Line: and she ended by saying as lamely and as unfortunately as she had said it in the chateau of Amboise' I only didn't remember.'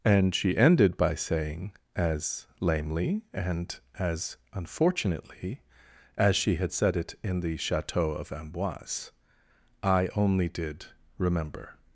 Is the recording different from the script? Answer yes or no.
yes